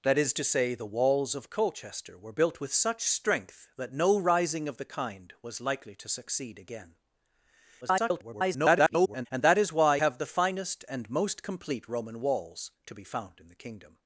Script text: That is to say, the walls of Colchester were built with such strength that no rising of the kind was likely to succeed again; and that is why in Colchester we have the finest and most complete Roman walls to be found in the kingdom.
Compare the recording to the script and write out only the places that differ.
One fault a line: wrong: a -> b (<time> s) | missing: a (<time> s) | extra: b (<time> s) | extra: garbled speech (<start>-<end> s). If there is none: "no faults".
extra: garbled speech (7.8-9.3 s)
missing: in Colchester we (10.0 s)